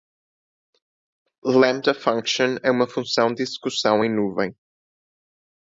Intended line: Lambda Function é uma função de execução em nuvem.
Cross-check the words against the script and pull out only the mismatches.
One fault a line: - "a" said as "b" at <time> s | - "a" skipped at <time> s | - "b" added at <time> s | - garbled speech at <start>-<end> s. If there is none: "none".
none